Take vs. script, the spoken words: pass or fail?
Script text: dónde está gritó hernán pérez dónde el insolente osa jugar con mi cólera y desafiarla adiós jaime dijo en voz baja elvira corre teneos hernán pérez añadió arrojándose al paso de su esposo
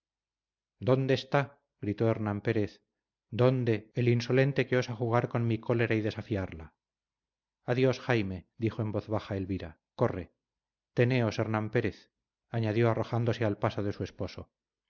fail